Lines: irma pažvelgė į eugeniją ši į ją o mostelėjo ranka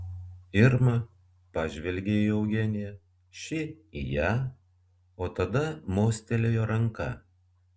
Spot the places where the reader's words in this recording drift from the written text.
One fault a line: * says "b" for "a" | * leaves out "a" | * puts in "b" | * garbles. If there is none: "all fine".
* puts in "tada"